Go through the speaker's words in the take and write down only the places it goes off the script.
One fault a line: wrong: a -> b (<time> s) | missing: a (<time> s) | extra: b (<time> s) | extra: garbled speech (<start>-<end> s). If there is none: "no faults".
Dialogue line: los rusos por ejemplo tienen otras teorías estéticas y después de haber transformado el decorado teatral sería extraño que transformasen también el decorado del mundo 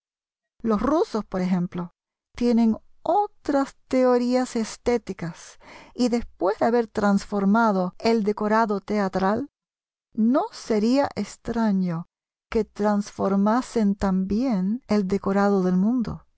extra: no (10.1 s)